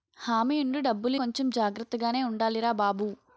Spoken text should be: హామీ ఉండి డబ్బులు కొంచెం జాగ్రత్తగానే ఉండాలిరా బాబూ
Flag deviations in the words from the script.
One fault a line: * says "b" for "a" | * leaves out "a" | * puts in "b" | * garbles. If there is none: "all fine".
all fine